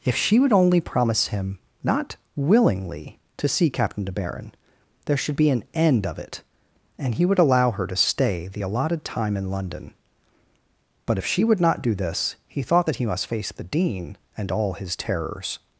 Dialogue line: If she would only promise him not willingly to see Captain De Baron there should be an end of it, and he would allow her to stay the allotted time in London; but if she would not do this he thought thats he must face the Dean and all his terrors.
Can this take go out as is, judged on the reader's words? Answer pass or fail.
fail